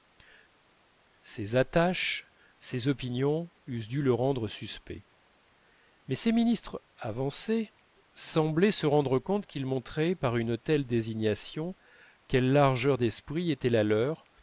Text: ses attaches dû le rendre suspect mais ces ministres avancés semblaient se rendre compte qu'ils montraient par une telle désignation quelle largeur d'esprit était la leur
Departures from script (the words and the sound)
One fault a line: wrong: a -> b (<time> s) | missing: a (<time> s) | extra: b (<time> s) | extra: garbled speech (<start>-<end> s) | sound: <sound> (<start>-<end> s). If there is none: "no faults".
extra: ses opinions eussent (2.6 s)